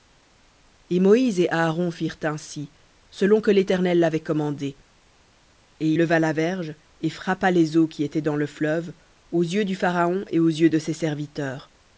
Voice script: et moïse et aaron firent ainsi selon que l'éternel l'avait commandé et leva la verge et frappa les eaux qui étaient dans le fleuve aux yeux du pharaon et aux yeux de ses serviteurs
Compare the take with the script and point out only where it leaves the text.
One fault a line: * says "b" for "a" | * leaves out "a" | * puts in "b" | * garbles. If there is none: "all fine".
all fine